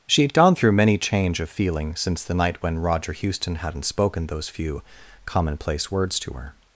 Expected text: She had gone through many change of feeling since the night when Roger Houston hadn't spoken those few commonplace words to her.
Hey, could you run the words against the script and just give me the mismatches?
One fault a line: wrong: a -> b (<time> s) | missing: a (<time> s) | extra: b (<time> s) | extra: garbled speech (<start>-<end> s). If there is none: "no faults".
no faults